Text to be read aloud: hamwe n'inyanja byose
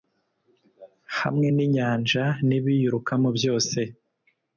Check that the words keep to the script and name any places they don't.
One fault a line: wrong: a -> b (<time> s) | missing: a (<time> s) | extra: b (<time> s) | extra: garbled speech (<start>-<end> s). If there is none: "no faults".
extra: n'ibiyirukamo (2.5 s)